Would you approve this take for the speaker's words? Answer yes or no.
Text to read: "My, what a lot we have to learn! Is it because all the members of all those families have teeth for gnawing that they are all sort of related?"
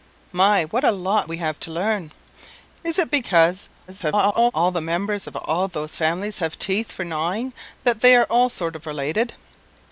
no